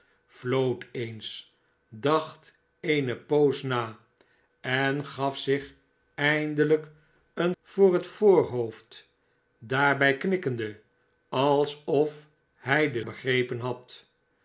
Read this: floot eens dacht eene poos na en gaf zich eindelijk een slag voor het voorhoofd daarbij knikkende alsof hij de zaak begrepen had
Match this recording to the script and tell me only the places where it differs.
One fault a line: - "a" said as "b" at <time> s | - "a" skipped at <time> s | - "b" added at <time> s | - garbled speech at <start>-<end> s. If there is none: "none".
- "slag" skipped at 7.5 s
- "zaak" skipped at 13.0 s